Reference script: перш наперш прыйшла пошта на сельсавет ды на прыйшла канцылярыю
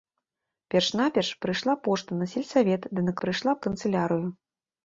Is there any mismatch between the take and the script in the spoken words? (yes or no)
no